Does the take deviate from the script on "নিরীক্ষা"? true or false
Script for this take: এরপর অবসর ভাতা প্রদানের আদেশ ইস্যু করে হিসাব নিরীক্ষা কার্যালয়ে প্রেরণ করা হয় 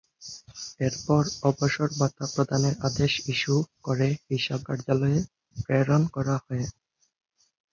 true